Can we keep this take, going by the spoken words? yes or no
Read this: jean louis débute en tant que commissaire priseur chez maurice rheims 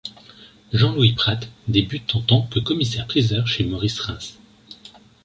no